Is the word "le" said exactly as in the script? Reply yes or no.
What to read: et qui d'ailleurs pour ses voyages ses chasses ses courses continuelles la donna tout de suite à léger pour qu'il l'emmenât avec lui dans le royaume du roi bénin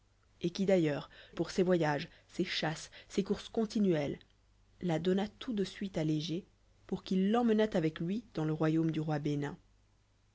yes